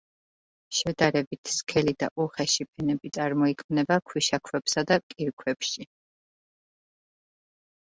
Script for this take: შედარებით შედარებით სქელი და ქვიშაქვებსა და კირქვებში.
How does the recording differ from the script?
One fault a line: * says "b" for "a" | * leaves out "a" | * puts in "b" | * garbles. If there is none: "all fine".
* leaves out "შედარებით"
* puts in "უხეში ფენები წარმოიქმნება"